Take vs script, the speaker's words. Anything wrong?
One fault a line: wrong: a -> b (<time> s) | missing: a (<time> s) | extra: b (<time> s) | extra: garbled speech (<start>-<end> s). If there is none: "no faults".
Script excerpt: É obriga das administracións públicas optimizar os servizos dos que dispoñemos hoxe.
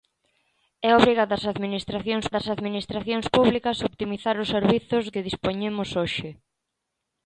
extra: das administracións (2.3 s)
missing: dos (5.0 s)